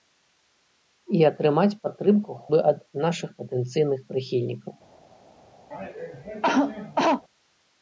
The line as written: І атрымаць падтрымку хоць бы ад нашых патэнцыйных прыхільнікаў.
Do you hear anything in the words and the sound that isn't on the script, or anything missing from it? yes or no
yes